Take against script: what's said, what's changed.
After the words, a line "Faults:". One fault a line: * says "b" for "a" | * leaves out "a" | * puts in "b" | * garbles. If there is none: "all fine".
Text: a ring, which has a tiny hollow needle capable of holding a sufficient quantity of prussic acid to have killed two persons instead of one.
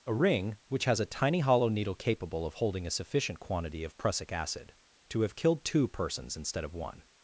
a ring, which has a tiny hollow needle capable of holding a sufficient quantity of prussic acid to have killed two persons instead of one.
Faults:
all fine